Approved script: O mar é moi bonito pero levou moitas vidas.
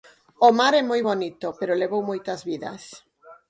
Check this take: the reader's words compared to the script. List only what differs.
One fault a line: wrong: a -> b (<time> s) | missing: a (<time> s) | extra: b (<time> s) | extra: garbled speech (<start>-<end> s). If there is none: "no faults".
no faults